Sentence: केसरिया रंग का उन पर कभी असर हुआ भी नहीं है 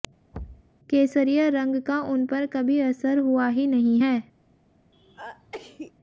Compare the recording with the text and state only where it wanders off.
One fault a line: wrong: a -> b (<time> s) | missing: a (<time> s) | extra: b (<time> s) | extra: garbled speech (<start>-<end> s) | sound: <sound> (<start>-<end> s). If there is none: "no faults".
sound: thud (0.3-0.7 s)
wrong: भी -> ही (3.5 s)
sound: sneeze (4.9-5.9 s)